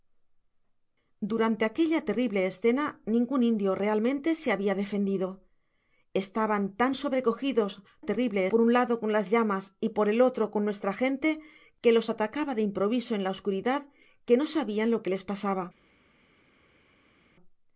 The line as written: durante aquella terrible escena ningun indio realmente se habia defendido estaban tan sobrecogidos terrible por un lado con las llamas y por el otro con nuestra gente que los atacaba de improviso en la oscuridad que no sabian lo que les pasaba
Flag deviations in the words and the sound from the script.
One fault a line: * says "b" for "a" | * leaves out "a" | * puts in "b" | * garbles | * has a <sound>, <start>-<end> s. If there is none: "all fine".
all fine